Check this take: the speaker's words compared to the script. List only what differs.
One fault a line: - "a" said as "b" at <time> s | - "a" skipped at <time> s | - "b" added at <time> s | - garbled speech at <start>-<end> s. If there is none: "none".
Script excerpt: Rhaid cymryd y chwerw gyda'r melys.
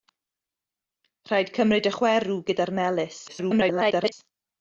- garbled speech at 3.3-4.1 s